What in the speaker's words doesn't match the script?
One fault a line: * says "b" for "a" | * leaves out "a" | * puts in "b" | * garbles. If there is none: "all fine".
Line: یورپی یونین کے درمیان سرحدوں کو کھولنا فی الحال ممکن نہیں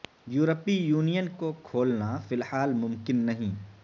* leaves out "کے درمیان سرحدوں"